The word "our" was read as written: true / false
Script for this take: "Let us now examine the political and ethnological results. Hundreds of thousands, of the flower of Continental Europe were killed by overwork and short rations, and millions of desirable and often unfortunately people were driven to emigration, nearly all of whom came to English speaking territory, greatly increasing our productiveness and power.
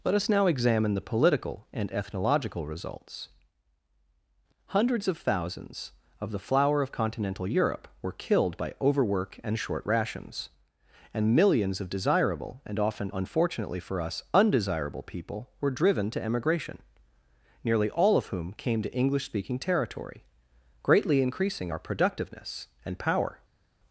true